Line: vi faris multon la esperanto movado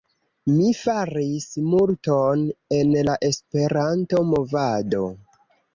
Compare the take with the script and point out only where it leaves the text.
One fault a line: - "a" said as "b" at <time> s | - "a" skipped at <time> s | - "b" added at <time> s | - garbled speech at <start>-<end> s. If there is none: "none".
- "vi" said as "mi" at 0.5 s
- "en" added at 2.8 s